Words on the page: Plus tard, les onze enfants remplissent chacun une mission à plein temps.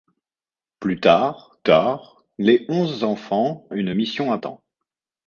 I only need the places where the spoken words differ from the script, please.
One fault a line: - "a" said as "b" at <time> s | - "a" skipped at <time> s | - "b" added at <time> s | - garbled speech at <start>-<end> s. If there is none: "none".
- "tard" added at 1.6 s
- "remplissent chacun" skipped at 3.7 s
- "plein" skipped at 4.4 s